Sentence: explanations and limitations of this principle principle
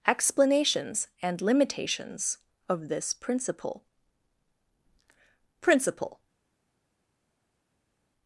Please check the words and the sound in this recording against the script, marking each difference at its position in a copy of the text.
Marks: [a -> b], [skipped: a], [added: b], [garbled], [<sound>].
explanations and limitations of this principle principle